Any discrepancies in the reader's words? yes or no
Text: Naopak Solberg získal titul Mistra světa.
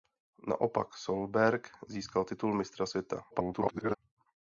yes